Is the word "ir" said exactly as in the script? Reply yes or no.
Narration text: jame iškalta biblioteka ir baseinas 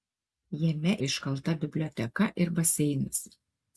yes